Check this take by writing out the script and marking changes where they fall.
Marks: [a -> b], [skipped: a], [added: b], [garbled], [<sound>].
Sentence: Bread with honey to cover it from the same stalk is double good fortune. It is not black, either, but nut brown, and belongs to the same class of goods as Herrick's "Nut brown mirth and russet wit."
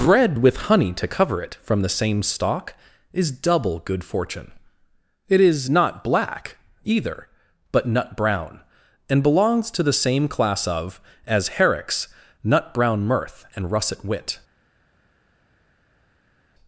Bread with honey to cover it from the same stalk is double good fortune. It is not black, either, but nut brown, and belongs to the same class of [skipped: goods] as Herrick's "Nut brown mirth and russet wit."